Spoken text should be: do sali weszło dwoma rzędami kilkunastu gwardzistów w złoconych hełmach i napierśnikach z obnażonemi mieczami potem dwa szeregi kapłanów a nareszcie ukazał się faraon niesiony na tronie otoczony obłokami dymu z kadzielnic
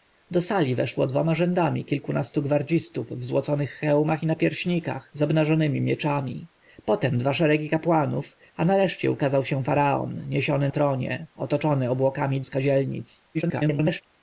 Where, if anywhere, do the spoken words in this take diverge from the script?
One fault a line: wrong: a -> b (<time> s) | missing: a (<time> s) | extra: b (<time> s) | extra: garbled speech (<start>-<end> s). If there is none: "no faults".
missing: na (10.7 s)
missing: dymu (12.4 s)
extra: garbled speech (13.3-14.0 s)